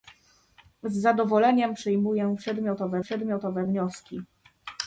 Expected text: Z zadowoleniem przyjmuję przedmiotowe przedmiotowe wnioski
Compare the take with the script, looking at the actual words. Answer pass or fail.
pass